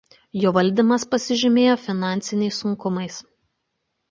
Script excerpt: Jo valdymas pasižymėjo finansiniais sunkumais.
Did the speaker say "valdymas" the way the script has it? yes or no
yes